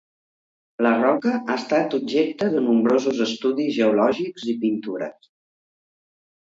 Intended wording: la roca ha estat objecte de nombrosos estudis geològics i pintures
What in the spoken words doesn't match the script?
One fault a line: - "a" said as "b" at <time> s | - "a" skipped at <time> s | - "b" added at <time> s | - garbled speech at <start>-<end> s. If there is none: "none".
none